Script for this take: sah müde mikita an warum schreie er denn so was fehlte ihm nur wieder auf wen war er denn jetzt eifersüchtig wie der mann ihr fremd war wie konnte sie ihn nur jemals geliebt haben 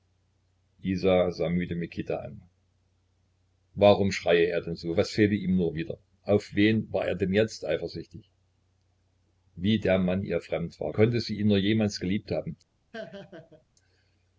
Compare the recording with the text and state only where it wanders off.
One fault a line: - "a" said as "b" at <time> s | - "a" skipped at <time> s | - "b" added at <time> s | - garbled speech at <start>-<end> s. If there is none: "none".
- "wie" skipped at 10.9 s